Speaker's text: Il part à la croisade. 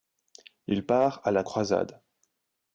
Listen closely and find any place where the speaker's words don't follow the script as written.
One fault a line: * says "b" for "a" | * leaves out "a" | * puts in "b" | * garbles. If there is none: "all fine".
all fine